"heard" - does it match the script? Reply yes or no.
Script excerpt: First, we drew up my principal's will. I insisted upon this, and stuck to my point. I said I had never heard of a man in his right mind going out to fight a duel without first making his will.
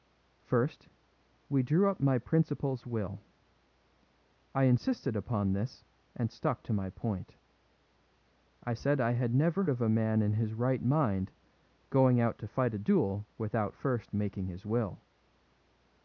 no